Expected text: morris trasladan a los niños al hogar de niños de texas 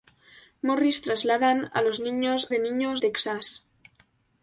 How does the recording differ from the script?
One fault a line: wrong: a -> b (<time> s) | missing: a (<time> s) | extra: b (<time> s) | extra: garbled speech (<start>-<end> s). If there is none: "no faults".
missing: al hogar (2.5 s)
missing: de (3.0 s)